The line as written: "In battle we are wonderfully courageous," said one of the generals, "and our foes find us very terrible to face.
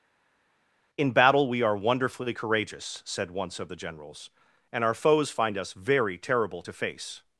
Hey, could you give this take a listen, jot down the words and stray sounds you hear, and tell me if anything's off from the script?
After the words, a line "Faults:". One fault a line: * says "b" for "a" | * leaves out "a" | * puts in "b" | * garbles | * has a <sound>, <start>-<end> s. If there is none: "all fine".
"In battle we are wonderfully courageous," said once of the generals, "and our foes find us very terrible to face.
Faults:
* says "once" for "one"